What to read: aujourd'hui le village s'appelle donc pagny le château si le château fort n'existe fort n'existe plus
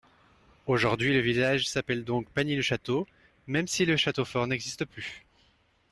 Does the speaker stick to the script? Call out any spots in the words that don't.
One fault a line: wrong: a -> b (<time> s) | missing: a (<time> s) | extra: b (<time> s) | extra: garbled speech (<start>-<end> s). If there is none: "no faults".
extra: même (3.5 s)
missing: fort n'existe (4.8 s)